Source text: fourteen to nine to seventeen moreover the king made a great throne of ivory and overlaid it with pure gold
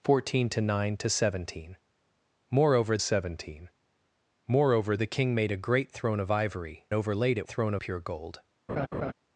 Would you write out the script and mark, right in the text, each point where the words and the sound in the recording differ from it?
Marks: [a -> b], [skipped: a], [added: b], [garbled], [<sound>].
fourteen to nine to seventeen moreover [added: seventeen moreover] the king made a great throne of ivory [skipped: and] overlaid it [with -> throne] pure gold [laugh]